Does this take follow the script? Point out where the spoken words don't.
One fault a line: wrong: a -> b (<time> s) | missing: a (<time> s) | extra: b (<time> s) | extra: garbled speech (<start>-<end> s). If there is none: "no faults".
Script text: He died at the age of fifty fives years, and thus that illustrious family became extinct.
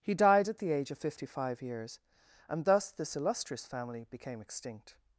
wrong: fives -> five (1.3 s)
wrong: that -> this (2.9 s)